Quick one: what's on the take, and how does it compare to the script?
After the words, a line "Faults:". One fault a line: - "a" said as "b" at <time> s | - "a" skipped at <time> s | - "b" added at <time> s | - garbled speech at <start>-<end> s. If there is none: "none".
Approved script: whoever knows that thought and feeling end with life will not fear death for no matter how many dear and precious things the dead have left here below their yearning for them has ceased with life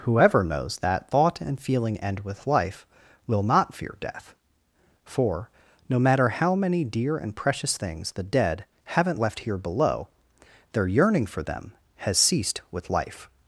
whoever knows that thought and feeling end with life will not fear death for no matter how many dear and precious things the dead haven't left here below their yearning for them has ceased with life
Faults:
- "have" said as "haven't" at 8.8 s